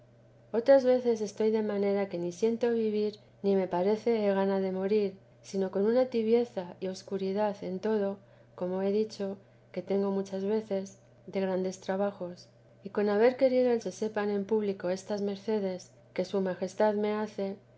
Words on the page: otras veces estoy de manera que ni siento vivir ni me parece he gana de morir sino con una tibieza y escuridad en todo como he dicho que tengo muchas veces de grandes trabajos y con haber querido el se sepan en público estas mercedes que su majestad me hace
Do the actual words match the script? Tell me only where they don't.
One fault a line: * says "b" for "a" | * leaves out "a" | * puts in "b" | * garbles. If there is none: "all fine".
all fine